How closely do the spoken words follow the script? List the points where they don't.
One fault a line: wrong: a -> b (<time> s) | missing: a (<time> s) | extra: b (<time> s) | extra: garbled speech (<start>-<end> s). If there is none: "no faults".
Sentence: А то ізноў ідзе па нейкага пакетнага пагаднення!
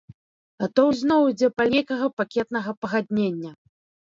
no faults